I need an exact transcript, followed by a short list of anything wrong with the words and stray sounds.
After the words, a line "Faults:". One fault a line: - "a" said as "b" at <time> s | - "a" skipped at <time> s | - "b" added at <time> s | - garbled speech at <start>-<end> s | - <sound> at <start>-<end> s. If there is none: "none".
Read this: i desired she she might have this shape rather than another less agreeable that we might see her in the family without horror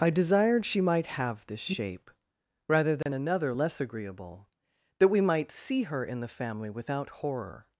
i desired she might have this shape rather than another less agreeable that we might see her in the family without horror
Faults:
- "she" skipped at 0.8 s
- dropout at 3.0-3.1 s